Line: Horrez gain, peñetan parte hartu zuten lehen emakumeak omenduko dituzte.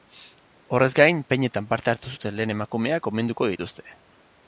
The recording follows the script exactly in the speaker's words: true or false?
true